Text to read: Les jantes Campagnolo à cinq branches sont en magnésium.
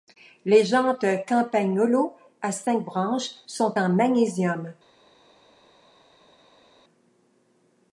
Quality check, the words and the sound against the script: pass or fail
pass